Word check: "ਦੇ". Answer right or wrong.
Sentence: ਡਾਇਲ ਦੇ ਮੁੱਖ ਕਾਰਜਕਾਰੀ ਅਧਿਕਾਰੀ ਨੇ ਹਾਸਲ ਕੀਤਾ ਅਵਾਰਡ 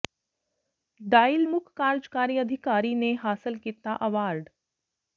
wrong